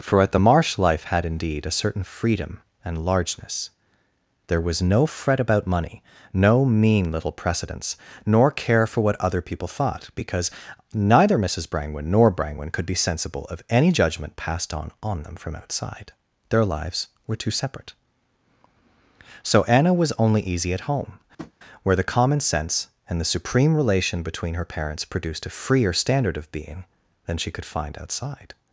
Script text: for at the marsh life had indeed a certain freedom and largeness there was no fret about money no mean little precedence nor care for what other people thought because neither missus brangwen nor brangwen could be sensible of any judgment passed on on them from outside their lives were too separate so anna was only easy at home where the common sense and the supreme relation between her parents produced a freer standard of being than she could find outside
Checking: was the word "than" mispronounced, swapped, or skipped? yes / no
no